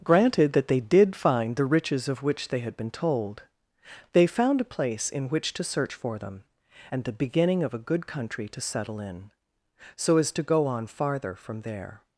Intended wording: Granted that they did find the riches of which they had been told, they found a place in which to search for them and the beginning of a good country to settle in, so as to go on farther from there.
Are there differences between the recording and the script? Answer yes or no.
no